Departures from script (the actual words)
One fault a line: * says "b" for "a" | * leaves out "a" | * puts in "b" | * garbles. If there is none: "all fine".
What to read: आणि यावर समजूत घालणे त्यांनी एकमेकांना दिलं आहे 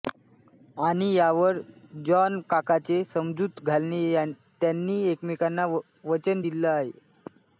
* puts in "जॉनकाकाचे"
* puts in "वचन"